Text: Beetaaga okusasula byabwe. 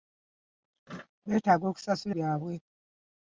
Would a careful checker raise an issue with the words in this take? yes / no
no